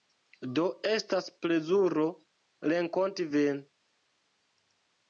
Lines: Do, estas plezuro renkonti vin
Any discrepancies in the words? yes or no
no